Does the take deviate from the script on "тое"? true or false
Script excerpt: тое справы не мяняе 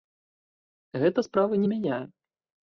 true